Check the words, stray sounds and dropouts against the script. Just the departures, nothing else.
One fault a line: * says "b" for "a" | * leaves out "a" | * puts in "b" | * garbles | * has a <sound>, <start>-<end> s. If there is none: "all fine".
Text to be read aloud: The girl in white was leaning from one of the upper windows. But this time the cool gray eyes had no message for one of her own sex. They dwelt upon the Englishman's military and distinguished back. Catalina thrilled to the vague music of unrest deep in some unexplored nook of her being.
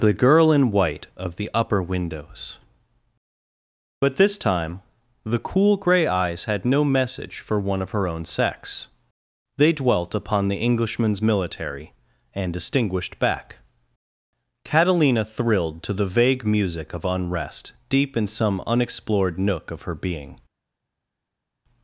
* leaves out "was leaning from one"